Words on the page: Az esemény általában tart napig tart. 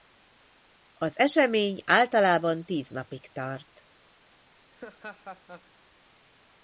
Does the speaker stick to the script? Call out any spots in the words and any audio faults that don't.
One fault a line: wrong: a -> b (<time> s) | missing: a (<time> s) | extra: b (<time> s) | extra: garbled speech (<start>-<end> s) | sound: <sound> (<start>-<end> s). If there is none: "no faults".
wrong: tart -> tíz (2.6 s)
sound: laugh (4.7-5.7 s)